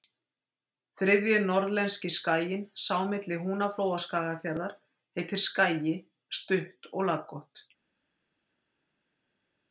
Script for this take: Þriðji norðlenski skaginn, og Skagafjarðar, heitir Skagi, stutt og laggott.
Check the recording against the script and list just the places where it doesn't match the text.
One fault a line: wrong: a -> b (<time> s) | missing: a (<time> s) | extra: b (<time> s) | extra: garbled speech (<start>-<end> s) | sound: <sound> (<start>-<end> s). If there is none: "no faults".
extra: sá milli Húnaflóa (2.9 s)